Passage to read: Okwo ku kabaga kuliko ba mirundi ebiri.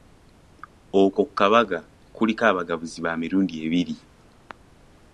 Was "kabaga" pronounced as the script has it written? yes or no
yes